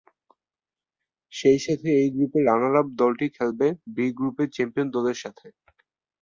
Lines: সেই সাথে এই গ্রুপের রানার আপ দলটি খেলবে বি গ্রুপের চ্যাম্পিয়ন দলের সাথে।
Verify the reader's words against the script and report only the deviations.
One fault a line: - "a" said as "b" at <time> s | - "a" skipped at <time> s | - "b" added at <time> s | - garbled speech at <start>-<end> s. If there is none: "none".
none